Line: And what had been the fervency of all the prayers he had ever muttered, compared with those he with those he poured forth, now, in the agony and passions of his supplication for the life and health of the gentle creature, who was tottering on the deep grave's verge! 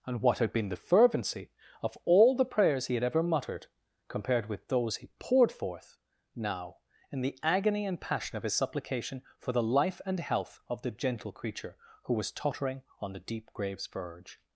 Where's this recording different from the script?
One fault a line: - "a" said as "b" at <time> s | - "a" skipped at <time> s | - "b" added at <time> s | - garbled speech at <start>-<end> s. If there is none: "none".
- "with those he" skipped at 5.1 s
- "passions" said as "passion" at 8.0 s